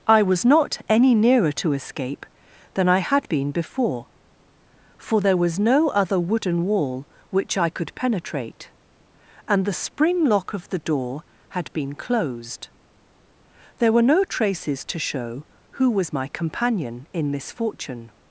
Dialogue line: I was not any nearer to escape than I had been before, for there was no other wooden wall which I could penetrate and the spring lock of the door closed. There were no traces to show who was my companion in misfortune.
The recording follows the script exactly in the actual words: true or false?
false